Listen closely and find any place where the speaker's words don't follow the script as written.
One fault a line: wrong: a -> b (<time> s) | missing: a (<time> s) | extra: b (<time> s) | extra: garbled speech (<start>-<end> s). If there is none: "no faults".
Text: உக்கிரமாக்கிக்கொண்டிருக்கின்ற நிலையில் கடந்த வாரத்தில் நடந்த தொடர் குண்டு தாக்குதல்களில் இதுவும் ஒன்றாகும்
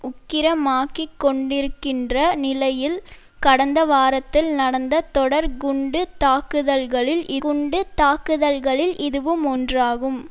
extra: குண்டு தாக்குதல்களில் (7.4 s)